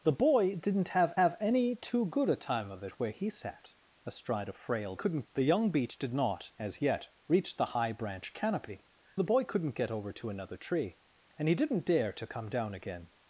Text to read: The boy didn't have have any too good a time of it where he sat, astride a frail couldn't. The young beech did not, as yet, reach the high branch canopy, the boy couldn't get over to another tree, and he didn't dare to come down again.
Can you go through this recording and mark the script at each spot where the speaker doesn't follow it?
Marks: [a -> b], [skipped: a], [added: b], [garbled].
The boy didn't have have any too good a time of it where he sat, astride a frail couldn't. The young beech did not, as yet, reach the high branch canopy, the boy couldn't get over to another tree, and he didn't dare to come down again.